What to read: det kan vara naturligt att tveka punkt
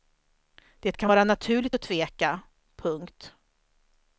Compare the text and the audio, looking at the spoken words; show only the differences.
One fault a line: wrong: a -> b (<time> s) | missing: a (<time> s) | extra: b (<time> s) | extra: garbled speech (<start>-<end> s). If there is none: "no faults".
no faults